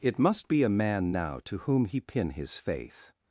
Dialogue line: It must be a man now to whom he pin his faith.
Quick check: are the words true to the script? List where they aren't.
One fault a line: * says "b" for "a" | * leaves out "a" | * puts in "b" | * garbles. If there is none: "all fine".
all fine